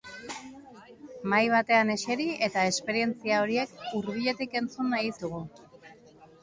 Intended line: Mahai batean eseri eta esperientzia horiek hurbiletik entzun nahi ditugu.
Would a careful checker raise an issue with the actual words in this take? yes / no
no